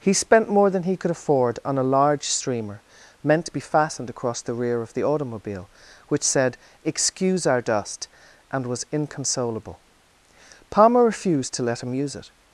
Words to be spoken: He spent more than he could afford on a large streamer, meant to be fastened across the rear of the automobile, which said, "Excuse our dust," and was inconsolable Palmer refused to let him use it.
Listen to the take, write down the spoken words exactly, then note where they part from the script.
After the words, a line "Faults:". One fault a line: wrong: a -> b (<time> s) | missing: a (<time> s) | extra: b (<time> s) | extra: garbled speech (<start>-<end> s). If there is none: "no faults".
He spent more than he could afford on a large streamer, meant to be fastened across the rear of the automobile, which said, "Excuse our dust," and was inconsolable Palmer refused to let him use it.
Faults:
no faults